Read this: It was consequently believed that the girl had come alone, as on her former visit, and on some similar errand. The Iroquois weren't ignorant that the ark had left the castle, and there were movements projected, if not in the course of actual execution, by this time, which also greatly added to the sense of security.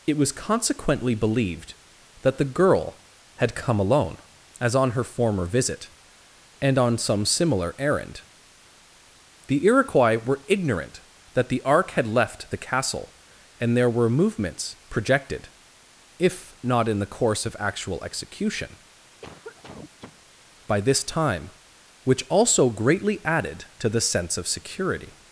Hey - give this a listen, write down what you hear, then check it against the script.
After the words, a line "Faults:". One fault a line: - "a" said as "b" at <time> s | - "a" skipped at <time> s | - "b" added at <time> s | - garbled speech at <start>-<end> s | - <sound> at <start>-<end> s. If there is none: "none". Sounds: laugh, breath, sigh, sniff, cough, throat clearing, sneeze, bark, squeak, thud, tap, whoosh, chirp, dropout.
It was consequently believed that the girl had come alone, as on her former visit, and on some similar errand. The Iroquois were ignorant that the ark had left the castle, and there were movements projected, if not in the course of actual execution, by this time, which also greatly added to the sense of security.
Faults:
- "weren't" said as "were" at 10.2 s
- cough at 19.2-20.2 s